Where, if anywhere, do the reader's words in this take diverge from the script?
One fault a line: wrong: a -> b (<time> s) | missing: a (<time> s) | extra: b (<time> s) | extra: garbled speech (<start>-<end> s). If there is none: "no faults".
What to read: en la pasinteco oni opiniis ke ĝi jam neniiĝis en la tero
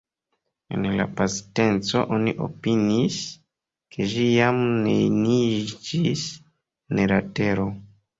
no faults